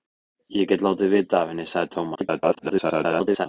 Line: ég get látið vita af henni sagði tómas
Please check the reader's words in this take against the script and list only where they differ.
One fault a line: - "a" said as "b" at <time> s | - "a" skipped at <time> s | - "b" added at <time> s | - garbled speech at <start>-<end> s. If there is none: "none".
- garbled speech at 2.1-3.5 s